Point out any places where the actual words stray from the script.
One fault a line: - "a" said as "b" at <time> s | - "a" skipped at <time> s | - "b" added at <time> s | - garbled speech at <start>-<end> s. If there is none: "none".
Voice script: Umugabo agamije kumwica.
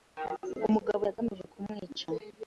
none